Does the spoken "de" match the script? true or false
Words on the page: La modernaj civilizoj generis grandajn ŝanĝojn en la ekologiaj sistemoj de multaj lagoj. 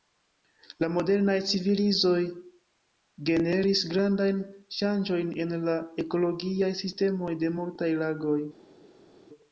true